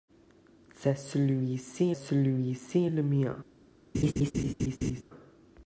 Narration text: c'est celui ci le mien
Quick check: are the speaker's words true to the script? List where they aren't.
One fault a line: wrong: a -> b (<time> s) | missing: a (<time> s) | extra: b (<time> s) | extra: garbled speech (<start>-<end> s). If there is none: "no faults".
extra: celui ci (1.9 s)